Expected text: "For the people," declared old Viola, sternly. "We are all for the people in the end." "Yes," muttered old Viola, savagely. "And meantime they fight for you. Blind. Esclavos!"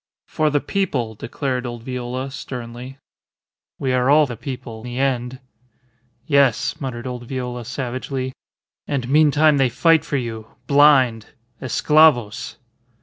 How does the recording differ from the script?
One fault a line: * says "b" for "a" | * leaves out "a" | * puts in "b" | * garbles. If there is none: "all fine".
* leaves out "for"
* leaves out "in"